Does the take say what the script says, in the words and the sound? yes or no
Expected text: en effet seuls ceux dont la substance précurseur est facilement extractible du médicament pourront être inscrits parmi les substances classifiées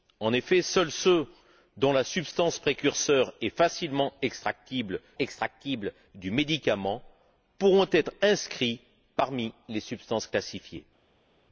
no